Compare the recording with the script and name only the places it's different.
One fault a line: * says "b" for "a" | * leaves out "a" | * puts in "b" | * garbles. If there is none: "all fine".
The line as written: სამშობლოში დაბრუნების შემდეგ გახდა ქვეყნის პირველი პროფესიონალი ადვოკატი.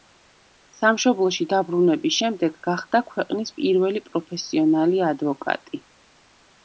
all fine